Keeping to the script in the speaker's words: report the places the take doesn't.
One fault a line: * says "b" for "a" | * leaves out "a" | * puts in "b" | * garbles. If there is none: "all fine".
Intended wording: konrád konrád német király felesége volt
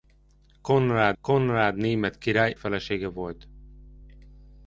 all fine